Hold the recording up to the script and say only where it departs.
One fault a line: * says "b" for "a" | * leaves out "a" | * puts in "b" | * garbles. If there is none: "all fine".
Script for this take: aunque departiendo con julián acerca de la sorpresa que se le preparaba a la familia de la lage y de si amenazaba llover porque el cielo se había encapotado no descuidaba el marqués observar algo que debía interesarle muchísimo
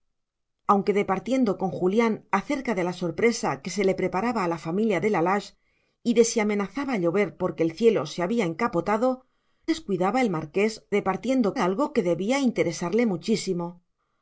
* leaves out "no"
* says "departiendo" for "observar"